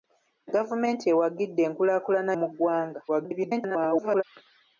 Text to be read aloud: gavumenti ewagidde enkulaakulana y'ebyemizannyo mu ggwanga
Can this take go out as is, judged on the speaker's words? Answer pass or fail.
fail